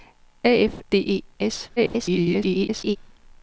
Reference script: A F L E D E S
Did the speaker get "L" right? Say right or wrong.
wrong